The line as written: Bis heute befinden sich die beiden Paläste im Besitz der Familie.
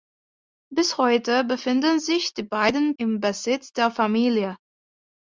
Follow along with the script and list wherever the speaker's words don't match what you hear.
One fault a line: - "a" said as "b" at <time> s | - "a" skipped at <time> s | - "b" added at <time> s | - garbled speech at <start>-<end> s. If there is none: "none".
- "Paläste" skipped at 3.0 s